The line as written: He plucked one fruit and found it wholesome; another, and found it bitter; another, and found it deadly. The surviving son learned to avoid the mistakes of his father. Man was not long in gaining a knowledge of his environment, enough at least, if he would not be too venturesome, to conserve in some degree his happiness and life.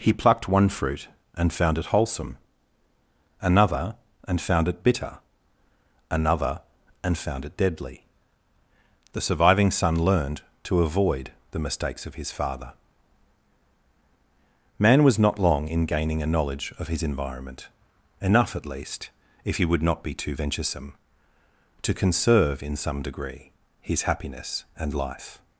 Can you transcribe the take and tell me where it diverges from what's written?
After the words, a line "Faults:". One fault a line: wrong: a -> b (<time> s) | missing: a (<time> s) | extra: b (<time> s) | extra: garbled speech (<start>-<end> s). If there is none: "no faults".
He plucked one fruit and found it wholesome; another, and found it bitter; another, and found it deadly. The surviving son learned to avoid the mistakes of his father. Man was not long in gaining a knowledge of his environment, enough at least, if he would not be too venturesome, to conserve in some degree his happiness and life.
Faults:
no faults